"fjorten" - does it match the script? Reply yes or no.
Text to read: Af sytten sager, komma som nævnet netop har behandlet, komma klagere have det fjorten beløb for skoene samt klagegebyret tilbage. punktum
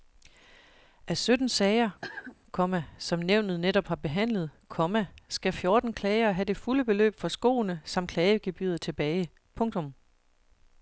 no